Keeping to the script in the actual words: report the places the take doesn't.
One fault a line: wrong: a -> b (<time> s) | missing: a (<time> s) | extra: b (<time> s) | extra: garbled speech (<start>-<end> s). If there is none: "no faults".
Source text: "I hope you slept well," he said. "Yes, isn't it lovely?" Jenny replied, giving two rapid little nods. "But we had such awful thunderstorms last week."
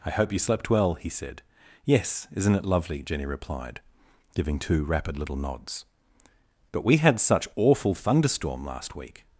wrong: thunderstorms -> thunderstorm (7.9 s)